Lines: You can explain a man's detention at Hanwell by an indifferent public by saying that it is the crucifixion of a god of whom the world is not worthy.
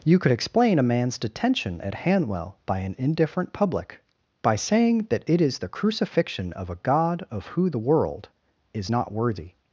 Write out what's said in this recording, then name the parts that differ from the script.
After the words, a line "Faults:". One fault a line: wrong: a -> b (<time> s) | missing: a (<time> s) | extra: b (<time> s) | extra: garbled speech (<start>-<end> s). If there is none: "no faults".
You could explain a man's detention at Hanwell by an indifferent public by saying that it is the crucifixion of a god of who the world is not worthy.
Faults:
wrong: can -> could (0.2 s)
wrong: whom -> who (7.5 s)